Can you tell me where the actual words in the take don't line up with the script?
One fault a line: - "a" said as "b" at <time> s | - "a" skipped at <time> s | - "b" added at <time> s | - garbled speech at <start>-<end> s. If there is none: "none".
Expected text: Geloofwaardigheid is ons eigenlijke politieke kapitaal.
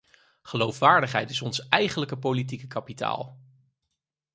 none